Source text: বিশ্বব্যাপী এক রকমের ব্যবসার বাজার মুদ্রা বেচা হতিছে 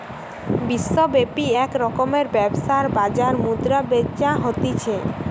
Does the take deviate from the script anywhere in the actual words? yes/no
no